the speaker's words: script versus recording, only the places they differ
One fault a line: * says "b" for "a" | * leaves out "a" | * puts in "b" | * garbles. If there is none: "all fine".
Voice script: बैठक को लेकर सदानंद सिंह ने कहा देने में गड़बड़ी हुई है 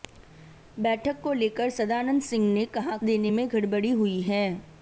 all fine